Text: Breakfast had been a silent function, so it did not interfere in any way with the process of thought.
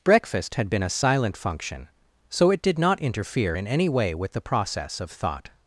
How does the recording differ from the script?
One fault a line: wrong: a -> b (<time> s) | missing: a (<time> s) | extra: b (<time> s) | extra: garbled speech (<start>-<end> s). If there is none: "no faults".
no faults